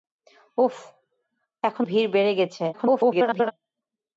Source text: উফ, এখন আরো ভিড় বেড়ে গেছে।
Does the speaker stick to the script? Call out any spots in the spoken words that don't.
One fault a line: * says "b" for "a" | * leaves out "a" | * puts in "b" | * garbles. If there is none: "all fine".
* leaves out "আরো"
* garbles